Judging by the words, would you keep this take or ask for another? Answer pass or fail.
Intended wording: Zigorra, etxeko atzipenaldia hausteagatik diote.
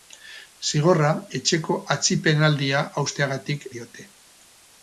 pass